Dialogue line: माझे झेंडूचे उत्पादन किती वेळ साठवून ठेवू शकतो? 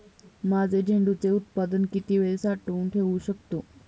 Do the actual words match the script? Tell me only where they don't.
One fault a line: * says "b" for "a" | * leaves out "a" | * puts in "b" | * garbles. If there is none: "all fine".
all fine